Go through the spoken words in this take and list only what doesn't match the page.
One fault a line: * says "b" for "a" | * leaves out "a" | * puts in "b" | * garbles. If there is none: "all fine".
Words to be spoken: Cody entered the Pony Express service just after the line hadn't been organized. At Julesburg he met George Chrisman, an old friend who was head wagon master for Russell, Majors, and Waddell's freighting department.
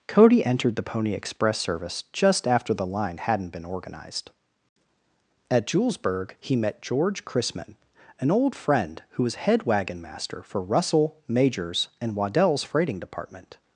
all fine